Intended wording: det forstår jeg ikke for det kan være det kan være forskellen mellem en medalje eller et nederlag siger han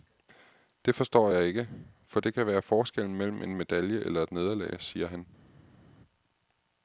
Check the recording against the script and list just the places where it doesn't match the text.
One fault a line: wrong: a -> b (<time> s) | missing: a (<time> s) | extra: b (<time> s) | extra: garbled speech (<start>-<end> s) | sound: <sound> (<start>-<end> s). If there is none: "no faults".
missing: det kan være (2.6 s)